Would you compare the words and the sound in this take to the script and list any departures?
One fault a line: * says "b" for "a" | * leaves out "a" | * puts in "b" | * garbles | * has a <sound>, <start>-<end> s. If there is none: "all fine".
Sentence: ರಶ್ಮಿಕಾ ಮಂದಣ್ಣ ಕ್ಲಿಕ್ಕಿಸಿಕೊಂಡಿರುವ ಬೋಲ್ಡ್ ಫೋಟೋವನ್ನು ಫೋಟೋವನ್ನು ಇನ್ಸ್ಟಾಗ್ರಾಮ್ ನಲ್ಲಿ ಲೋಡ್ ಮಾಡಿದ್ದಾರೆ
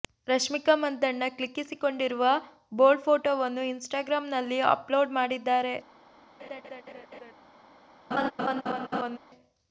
* leaves out "ಫೋಟೋವನ್ನು"
* puts in "ಅಪ್"
* has a laugh, 6.4-7.3 s
* has a laugh, 8.1-9.2 s